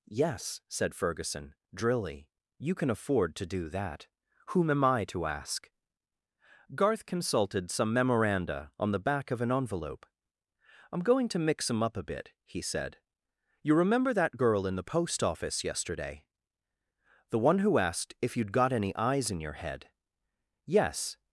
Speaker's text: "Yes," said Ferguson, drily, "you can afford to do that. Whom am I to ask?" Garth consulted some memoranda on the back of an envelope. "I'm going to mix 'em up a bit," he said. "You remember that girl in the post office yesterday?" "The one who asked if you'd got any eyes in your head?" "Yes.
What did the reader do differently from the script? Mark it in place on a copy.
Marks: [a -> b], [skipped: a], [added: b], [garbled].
"Yes," said Ferguson, drily, "you can afford to do that. Whom am I to ask?" Garth consulted some memoranda on the back of an envelope. "I'm going to mix 'em up a bit," he said. "You remember that girl in the post office yesterday?" "The one who asked if you'd got any eyes in your head?" "Yes.